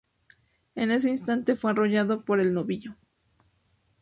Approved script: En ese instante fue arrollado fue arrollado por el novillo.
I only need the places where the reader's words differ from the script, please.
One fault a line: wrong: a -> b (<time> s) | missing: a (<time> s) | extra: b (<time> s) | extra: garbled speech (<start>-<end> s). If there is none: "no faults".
missing: fue arrollado (2.2 s)